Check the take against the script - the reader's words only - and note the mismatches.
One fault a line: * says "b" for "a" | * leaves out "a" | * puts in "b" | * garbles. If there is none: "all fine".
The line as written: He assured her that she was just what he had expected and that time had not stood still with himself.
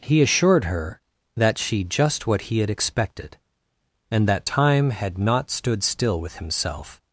* leaves out "was"